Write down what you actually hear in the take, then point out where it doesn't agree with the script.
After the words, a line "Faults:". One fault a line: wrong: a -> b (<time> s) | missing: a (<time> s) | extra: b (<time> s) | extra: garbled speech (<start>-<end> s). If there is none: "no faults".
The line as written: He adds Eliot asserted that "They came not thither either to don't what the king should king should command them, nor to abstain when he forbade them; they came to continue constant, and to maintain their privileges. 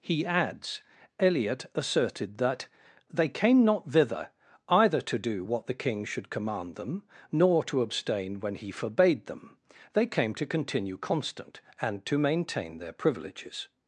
He adds Eliot asserted that "They came not thither either to do what the king should command them, nor to abstain when he forbade them; they came to continue constant, and to maintain their privileges.
Faults:
wrong: don't -> do (5.2 s)
missing: king should (6.3 s)